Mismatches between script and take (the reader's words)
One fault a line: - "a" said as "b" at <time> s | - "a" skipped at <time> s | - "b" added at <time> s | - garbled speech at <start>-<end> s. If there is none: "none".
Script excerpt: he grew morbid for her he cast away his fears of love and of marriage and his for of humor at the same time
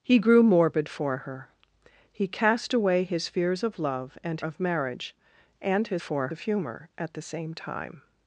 none